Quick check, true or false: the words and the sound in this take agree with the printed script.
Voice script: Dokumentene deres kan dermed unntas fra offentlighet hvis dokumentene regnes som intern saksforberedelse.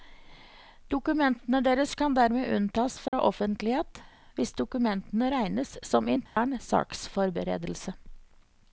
false